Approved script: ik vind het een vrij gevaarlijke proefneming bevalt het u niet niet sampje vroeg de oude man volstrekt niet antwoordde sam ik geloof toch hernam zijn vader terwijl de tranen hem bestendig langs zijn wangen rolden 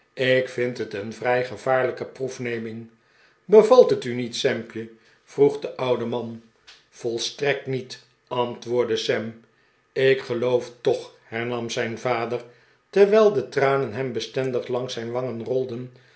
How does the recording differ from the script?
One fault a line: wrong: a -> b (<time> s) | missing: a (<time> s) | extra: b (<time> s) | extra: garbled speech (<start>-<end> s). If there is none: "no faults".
missing: niet (4.4 s)